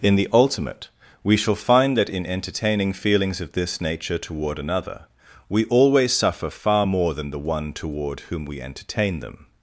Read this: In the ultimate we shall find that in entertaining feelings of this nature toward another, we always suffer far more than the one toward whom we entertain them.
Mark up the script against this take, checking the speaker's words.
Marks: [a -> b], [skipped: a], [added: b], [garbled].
In the ultimate we shall find that in entertaining feelings of this nature toward another, we always suffer far more than the one toward whom we entertain them.